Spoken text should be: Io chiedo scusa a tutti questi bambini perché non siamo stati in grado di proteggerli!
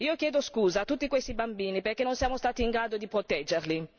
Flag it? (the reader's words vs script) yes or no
no